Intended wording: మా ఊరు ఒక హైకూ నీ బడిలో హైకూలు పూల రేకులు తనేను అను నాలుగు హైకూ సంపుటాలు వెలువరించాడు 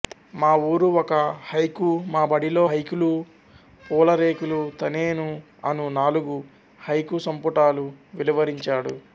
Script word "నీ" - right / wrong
wrong